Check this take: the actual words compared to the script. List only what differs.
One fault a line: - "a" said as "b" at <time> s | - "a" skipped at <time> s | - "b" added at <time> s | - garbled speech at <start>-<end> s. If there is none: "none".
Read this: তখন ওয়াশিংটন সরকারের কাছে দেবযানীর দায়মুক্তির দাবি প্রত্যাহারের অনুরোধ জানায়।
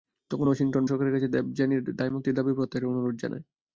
none